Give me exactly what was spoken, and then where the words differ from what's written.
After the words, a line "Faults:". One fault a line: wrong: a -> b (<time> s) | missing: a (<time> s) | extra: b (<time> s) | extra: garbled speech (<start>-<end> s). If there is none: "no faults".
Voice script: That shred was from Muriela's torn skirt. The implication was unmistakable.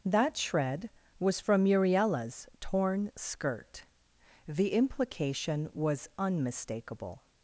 That shred was from Muriela's torn skirt. The implication was unmistakable.
Faults:
no faults